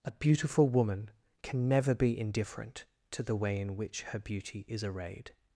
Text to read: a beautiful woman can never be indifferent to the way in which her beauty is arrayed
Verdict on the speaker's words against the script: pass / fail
pass